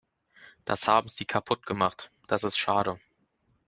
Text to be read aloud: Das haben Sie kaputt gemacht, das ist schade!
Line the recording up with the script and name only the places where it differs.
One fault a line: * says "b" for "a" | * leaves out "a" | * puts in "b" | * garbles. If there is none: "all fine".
all fine